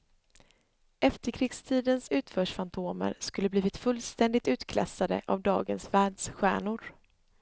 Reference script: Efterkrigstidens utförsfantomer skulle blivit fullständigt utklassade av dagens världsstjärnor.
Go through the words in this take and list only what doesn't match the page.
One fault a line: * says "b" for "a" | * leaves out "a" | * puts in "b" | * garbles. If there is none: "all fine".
all fine